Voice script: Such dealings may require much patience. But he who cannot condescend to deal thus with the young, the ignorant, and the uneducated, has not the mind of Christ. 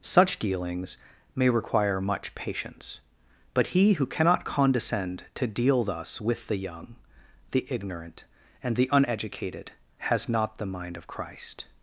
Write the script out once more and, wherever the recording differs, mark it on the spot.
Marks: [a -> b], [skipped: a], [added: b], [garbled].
Such dealings may require much patience. But he who cannot condescend to deal thus with the young, the ignorant, and the uneducated, has not the mind of Christ.